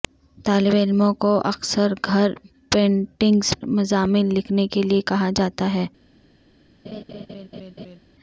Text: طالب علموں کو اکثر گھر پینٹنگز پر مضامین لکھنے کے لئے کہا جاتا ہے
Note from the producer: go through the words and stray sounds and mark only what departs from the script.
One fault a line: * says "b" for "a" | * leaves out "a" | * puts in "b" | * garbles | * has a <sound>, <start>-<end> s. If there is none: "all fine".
* leaves out "پر"
* has a laugh, 6.8-8.0 s